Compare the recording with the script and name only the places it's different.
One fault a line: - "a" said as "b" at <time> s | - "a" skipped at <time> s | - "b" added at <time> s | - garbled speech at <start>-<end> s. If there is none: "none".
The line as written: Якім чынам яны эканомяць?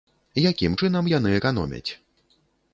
none